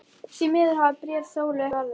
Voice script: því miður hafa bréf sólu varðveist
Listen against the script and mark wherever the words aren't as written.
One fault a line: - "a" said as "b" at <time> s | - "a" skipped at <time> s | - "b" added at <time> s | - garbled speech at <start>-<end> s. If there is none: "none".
none